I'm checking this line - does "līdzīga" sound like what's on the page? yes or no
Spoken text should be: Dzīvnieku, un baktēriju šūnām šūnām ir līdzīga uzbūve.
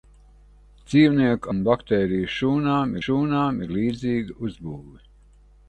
yes